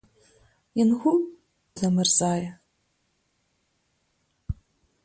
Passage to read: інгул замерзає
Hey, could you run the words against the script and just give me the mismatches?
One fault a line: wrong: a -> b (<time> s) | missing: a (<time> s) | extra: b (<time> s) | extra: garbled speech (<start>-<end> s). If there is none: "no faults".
no faults